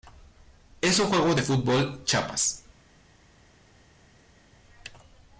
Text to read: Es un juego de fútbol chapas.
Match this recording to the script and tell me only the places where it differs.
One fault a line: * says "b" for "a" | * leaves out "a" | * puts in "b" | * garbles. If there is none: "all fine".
all fine